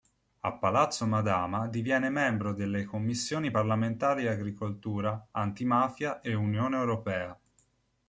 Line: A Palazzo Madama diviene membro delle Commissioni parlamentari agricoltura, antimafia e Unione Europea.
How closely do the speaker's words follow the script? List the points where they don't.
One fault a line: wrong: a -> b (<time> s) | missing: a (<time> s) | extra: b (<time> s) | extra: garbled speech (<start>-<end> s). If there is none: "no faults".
no faults